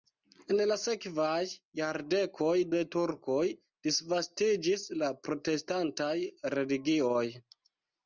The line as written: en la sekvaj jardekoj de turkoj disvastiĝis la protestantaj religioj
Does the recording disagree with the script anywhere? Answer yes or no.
no